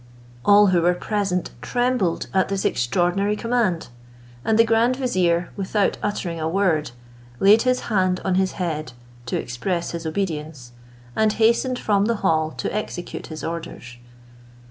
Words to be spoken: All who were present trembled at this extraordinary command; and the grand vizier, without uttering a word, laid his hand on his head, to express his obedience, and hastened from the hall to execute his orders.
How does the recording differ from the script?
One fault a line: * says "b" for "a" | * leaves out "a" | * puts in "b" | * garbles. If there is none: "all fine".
all fine